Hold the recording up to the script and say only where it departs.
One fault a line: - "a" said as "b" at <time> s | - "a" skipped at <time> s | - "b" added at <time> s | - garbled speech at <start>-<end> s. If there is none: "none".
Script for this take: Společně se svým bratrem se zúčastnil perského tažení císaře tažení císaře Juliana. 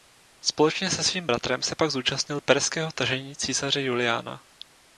- "pak" added at 1.7 s
- "tažení císaře" skipped at 3.8 s